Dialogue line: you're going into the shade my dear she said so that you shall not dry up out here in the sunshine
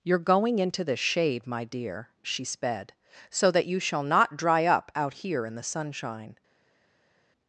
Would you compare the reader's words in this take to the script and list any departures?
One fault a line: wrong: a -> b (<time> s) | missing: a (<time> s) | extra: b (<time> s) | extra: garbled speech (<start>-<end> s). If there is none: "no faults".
wrong: said -> sped (2.4 s)